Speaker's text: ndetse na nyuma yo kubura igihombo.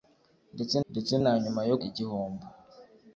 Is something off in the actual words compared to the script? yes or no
yes